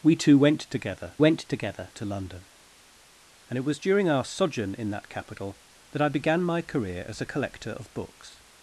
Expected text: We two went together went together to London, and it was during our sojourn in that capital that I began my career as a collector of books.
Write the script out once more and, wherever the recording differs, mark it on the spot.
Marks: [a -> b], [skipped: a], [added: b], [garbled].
We two went together went together to London, and it was during our sojourn in that capital that I began my career as a collector of books.